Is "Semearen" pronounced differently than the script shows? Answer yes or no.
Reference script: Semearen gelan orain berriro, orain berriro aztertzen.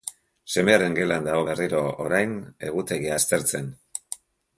no